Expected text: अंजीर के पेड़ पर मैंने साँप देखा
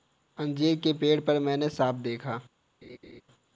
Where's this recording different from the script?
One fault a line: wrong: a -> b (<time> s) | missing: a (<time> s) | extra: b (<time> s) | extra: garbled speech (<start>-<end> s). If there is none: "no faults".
no faults